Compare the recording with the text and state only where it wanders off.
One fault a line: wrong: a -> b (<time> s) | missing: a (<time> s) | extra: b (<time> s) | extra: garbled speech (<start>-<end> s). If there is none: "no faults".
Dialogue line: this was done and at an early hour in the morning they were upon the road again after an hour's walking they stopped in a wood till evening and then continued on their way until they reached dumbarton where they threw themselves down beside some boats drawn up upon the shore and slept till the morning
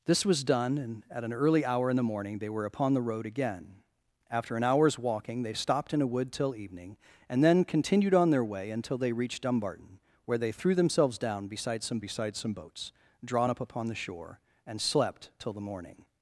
extra: beside some (12.0 s)